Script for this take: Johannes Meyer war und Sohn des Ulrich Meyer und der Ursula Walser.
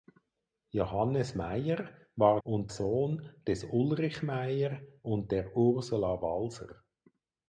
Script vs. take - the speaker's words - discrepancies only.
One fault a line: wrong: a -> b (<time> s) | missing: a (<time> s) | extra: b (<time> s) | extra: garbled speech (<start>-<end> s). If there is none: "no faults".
no faults